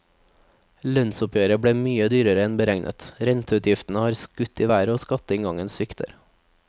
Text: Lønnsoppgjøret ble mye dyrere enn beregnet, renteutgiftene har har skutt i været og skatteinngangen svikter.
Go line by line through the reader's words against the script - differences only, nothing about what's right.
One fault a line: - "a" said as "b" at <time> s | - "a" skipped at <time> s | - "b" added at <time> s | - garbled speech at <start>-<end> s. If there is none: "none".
- "har" skipped at 4.2 s